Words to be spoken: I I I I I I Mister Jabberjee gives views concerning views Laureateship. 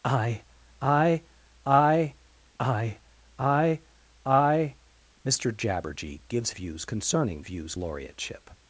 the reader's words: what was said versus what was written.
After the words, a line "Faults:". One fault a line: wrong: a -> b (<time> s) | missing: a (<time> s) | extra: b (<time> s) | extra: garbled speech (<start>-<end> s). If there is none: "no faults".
I I I I I I Mister Jabberjee gives views concerning views Laureateship.
Faults:
no faults